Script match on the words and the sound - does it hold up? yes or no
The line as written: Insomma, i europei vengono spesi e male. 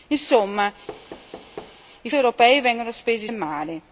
no